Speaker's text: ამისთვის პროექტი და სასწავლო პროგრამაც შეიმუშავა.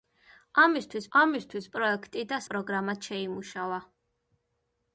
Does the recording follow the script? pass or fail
fail